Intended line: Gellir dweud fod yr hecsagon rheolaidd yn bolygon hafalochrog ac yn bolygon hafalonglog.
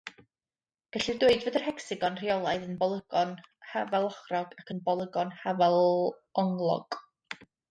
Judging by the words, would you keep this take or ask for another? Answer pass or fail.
pass